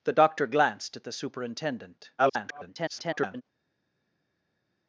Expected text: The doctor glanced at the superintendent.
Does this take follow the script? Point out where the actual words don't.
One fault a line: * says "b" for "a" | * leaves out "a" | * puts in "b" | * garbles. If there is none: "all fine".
* garbles